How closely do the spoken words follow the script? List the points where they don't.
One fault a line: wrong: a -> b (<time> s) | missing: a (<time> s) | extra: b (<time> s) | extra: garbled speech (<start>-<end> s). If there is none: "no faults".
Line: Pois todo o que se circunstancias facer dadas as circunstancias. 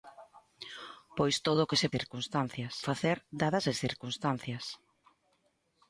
no faults